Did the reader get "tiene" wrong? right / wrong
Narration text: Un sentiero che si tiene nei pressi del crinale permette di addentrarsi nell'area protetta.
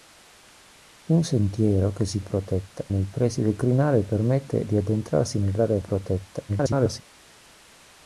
wrong